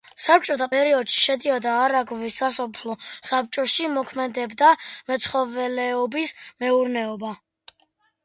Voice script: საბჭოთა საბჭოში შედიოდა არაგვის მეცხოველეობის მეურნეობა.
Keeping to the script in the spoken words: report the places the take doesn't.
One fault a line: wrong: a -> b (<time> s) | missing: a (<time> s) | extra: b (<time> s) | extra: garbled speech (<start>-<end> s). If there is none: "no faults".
wrong: საბჭოში -> პერიოდში (0.7 s)
extra: სასოფლო საბჭოში მოქმედებდა (2.4 s)